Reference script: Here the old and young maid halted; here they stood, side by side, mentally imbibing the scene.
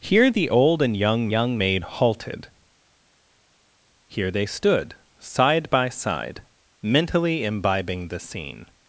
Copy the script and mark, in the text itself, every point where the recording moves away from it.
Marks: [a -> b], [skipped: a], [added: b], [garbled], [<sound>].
Here the old and young [added: young] maid halted; here they stood, side by side, mentally imbibing the scene.